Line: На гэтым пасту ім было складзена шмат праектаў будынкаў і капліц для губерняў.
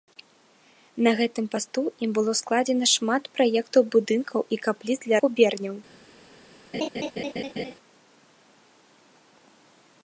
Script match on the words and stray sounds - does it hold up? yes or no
no